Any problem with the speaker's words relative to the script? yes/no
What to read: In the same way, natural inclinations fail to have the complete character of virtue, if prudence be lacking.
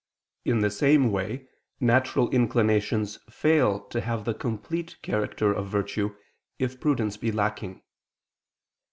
no